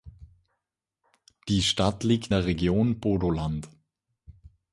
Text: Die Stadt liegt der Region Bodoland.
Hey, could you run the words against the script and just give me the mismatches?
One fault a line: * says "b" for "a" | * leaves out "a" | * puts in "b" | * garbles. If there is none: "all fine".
all fine